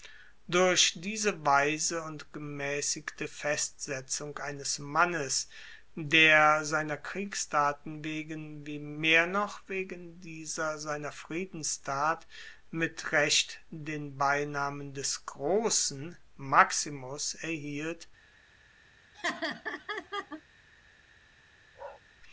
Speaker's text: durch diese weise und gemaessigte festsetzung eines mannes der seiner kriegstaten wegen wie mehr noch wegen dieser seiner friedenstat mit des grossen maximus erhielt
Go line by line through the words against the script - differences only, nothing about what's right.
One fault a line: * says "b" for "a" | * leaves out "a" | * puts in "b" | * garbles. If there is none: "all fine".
* puts in "recht den beinamen"